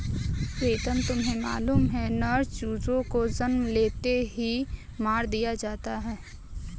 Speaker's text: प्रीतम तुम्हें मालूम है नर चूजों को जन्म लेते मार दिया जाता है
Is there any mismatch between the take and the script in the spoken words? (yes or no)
yes